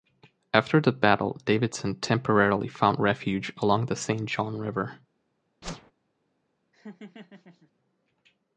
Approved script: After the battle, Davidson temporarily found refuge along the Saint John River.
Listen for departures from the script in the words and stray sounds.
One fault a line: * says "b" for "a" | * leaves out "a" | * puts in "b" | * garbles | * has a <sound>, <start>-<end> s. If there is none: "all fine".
* has a whoosh, 5.6-5.9 s
* has a laugh, 6.7-7.7 s